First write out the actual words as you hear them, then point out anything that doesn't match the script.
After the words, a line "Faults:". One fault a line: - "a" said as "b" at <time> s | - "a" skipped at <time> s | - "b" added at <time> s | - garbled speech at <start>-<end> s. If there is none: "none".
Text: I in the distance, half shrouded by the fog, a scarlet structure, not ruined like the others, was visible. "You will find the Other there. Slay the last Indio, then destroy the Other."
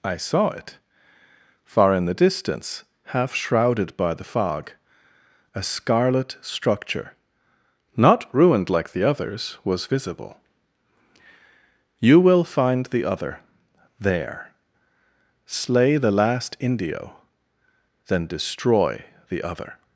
I saw it. Far in the distance, half shrouded by the fog, a scarlet structure, not ruined like the others, was visible. "You will find the Other there. Slay the last Indio, then destroy the Other."
Faults:
- "saw it Far" added at 0.2 s